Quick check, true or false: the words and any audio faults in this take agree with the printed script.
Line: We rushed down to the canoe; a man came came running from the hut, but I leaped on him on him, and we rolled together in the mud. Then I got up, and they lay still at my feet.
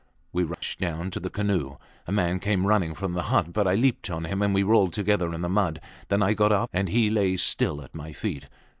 false